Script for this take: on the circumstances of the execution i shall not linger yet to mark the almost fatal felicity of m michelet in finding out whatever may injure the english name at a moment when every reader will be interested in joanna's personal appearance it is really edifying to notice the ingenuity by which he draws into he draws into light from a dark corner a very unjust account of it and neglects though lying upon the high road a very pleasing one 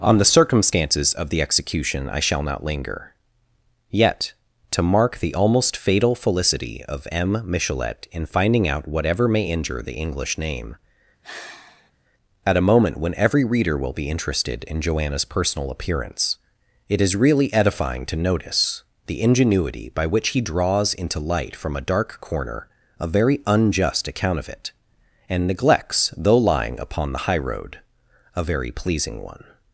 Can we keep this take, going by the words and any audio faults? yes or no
no